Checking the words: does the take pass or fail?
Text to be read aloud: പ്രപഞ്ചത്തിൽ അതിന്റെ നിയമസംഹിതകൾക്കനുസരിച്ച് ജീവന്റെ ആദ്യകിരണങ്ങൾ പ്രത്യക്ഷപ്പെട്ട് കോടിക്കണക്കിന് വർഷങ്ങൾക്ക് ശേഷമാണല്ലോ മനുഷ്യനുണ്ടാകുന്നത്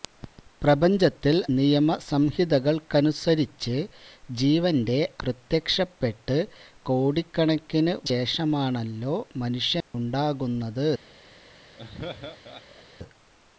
fail